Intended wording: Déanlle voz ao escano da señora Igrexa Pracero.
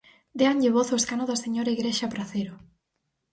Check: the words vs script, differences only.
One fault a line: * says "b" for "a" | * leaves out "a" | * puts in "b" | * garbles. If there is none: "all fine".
all fine